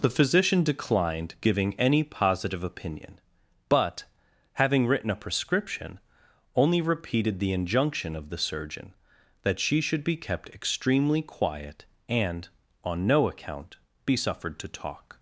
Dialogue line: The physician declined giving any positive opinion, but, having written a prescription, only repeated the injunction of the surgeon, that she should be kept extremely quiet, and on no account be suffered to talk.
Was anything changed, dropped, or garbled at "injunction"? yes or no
no